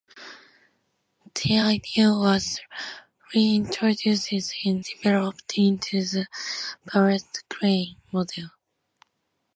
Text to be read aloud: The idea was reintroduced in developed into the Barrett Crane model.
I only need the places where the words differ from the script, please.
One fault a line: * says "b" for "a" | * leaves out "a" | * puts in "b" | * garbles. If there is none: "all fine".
all fine